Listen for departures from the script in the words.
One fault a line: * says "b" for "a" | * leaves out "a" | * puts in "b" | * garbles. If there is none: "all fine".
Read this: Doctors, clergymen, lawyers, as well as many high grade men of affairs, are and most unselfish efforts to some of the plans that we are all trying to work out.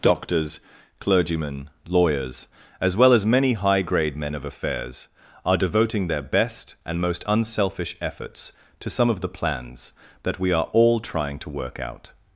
* puts in "devoting their best"